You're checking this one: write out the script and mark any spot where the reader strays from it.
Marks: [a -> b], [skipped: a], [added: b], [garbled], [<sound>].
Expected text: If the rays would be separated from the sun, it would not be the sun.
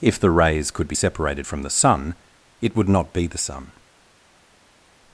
If the rays [would -> could] be separated from the sun, it would not be the sun.